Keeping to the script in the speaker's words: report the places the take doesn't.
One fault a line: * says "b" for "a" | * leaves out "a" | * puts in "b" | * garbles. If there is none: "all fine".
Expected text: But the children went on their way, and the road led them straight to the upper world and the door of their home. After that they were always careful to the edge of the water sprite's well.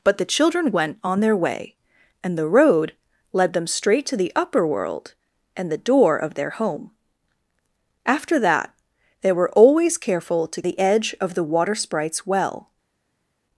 all fine